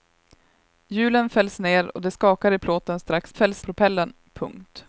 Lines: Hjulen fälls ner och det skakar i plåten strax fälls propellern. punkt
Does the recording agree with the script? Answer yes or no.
yes